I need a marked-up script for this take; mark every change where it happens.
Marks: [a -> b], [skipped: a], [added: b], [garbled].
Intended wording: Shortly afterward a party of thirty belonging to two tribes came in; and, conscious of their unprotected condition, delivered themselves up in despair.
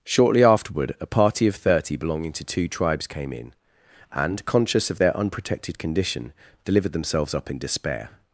Shortly afterward a party of thirty belonging to two tribes came in; and, conscious of their unprotected condition, delivered themselves up in despair.